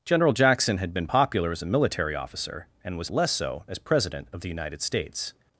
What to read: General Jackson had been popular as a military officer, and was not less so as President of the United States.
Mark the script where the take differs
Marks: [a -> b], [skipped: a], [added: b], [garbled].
General Jackson had been popular as a military officer, and was [skipped: not] less so as President of the United States.